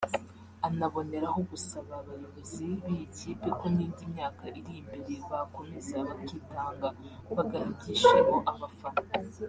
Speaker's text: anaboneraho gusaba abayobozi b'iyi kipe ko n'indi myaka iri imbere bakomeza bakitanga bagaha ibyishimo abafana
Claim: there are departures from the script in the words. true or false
false